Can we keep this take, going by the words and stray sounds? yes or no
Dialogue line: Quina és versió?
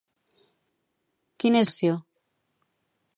yes